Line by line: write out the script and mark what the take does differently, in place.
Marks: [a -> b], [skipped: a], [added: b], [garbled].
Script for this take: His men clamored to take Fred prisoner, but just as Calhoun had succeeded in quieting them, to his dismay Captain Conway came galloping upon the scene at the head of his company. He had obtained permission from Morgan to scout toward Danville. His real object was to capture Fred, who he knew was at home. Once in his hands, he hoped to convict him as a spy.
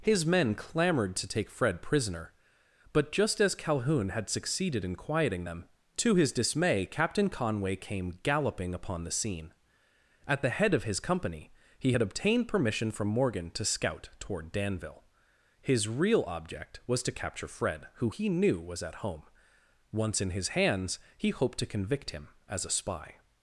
His men clamored to take Fred prisoner, but just as Calhoun had succeeded in quieting them, to his dismay Captain Conway came galloping upon the scene at the head of his company. He had obtained permission from Morgan to scout toward Danville. His real object was to capture Fred, who he knew was at home. Once in his hands, he hoped to convict him as a spy.